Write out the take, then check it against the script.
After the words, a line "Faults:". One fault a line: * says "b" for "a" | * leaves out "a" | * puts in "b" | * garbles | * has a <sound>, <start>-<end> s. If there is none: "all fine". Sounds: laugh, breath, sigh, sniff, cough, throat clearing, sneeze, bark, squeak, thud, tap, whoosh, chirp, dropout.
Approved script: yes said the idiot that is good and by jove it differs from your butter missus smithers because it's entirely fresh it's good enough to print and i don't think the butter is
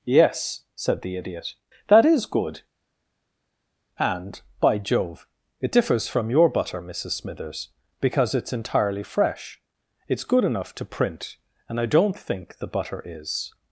yes said the idiot that is good and by jove it differs from your butter missus smithers because it's entirely fresh it's good enough to print and i don't think the butter is
Faults:
all fine